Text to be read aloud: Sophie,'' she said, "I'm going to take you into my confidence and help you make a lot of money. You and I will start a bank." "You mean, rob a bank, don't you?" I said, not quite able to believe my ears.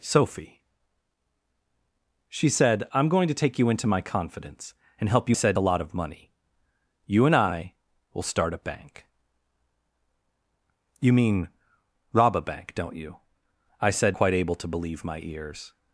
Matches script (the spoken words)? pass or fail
fail